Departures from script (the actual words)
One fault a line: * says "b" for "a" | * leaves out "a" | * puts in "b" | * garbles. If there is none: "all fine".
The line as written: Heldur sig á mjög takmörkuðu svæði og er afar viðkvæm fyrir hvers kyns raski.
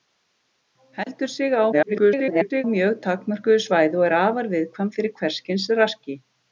* garbles